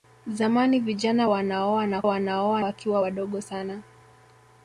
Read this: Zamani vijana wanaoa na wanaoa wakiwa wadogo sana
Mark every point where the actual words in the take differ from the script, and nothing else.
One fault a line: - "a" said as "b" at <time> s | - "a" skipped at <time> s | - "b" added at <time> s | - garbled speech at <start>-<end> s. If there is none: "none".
none